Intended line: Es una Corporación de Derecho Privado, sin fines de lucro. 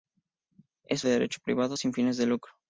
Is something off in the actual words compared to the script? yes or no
yes